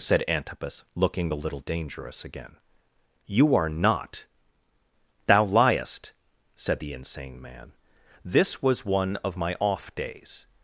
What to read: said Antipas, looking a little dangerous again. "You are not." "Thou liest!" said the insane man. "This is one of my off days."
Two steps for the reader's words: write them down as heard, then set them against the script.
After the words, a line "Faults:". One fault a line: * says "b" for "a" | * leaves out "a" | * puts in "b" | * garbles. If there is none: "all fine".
said Antipas, looking the little dangerous again. "You are not." "Thou liest!" said the insane man. "This was one of my off days."
Faults:
* says "the" for "a"
* says "was" for "is"